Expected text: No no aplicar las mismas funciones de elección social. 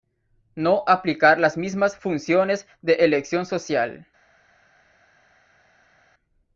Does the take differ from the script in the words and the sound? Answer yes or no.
yes